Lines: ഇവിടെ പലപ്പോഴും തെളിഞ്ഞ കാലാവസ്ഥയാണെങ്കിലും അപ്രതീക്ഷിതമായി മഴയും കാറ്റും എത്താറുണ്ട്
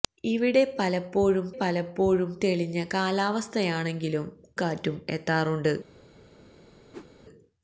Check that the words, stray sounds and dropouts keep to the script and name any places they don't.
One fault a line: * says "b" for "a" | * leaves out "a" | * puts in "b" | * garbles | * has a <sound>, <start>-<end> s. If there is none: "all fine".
* puts in "പലപ്പോഴും"
* leaves out "അപ്രതീക്ഷിതമായി മഴയും"
* has a whoosh, 6.9-7.1 s